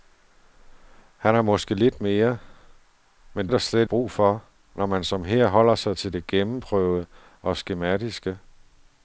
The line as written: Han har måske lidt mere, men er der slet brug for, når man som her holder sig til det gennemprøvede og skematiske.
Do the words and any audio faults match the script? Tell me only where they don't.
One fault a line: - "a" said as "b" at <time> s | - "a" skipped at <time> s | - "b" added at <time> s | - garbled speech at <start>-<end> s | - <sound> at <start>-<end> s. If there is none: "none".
none